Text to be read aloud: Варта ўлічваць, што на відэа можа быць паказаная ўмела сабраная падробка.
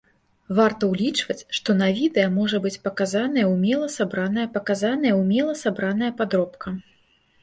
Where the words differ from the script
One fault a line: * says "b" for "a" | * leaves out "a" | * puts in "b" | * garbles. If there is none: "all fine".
* puts in "паказаная ўмела сабраная"